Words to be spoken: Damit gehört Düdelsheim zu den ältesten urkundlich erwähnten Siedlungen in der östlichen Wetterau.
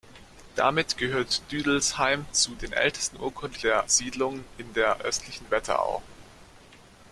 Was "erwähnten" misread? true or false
true